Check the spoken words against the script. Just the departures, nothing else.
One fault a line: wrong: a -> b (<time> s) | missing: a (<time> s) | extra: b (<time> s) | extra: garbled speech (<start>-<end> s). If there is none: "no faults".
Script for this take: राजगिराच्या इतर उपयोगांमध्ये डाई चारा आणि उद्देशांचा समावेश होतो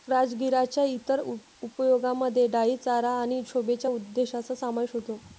extra: शोभेच्या (3.5 s)